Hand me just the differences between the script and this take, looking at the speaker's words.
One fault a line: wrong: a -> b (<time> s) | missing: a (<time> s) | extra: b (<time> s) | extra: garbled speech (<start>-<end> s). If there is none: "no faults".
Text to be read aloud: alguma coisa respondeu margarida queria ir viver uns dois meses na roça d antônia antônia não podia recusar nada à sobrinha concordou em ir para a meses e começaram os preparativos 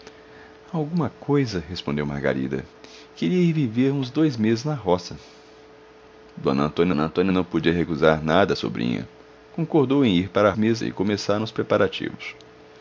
no faults